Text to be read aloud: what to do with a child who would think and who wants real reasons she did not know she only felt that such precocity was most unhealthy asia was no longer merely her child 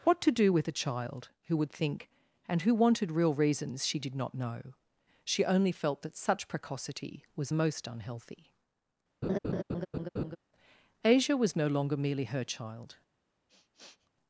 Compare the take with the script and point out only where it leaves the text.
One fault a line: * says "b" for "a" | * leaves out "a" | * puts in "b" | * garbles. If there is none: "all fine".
* says "wanted" for "wants"